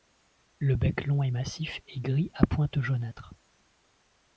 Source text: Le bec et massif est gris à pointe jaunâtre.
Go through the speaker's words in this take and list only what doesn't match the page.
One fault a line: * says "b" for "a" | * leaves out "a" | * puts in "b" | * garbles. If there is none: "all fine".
* puts in "long"